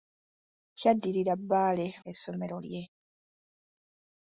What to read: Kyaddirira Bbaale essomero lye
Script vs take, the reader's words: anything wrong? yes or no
no